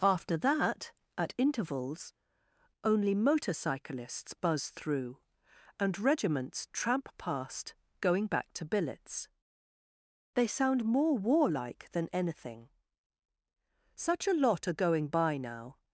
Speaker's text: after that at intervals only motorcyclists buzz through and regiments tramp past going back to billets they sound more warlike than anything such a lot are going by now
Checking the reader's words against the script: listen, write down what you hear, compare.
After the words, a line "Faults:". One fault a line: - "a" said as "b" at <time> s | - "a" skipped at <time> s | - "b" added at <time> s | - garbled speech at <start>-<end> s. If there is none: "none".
after that at intervals only motorcyclists buzz through and regiments tramp past going back to billets they sound more warlike than anything such a lot are going by now
Faults:
none